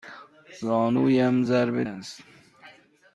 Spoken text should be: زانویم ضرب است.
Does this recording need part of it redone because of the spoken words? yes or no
no